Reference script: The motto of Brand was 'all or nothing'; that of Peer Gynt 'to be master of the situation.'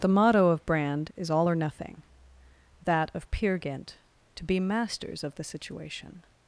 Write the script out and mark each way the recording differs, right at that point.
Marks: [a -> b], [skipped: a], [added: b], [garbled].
The motto of Brand [was -> is] 'all or nothing'; that of Peer Gynt 'to be [master -> masters] of the situation.'